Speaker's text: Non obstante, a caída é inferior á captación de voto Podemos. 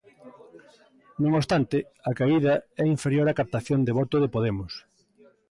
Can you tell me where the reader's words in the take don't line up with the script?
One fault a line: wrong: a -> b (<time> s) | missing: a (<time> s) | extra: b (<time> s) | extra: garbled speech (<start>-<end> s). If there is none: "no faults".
extra: de (4.2 s)